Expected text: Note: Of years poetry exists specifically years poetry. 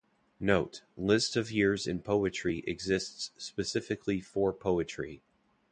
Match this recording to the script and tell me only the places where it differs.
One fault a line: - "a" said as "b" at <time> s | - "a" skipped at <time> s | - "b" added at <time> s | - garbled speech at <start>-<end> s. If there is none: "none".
- "List" added at 1.0 s
- "in" added at 1.9 s
- "years" said as "for" at 4.2 s